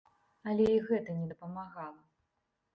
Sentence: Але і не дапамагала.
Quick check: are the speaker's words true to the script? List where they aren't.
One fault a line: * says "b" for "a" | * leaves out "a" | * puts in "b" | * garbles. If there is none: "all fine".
* puts in "гэта"